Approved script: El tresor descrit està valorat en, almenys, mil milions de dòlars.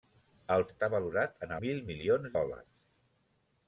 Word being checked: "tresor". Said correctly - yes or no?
no